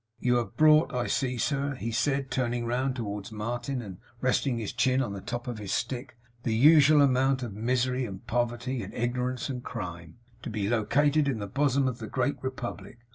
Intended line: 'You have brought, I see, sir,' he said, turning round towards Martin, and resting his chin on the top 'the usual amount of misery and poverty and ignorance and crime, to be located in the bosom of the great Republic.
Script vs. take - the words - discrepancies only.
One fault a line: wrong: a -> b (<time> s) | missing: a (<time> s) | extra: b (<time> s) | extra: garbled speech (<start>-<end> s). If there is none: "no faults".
extra: of his stick (5.5 s)